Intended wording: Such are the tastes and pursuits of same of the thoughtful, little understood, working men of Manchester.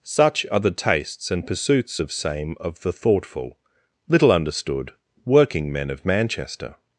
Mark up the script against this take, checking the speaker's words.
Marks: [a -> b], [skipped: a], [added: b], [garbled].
Such are the tastes and pursuits of same of the thoughtful, little understood, working men of Manchester.